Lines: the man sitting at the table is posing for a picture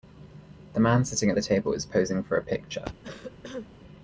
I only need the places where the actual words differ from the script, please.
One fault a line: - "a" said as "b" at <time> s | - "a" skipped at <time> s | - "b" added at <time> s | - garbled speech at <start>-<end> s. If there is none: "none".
none